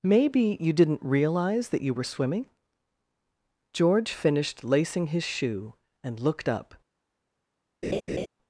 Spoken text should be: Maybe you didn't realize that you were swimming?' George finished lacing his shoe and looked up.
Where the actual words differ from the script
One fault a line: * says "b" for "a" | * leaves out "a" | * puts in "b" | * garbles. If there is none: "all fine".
all fine